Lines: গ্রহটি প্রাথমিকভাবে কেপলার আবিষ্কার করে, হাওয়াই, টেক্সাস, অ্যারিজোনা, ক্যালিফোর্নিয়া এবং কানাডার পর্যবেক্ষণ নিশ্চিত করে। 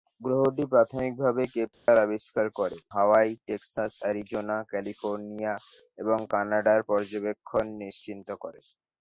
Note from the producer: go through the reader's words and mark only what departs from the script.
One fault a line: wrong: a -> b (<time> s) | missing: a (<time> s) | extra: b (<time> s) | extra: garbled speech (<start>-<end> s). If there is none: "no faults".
no faults